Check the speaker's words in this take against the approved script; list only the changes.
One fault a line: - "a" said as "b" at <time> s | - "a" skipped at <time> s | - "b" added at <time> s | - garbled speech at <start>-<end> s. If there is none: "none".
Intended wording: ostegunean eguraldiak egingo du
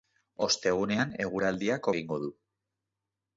none